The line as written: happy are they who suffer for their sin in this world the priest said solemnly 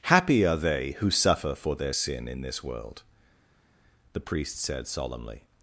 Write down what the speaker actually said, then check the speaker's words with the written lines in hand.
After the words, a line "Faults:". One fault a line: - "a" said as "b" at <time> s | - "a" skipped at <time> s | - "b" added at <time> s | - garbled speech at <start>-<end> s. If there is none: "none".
happy are they who suffer for their sin in this world the priest said solemnly
Faults:
none